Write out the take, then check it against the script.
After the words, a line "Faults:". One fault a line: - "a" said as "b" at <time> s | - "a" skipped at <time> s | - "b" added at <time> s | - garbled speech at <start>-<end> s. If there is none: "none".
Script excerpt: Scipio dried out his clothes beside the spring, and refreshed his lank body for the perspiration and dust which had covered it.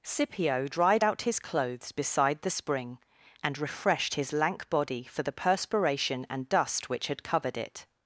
Scipio dried out his clothes beside the spring, and refreshed his lank body for the perspiration and dust which had covered it.
Faults:
none